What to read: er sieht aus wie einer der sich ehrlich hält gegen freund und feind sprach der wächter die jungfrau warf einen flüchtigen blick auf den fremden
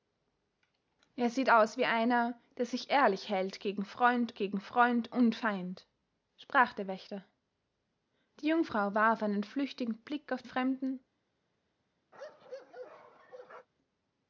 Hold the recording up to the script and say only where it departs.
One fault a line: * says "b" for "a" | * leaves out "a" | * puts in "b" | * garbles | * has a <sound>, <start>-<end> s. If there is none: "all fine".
* puts in "gegen freund"
* leaves out "den"
* has a bark, 12.1-13.7 s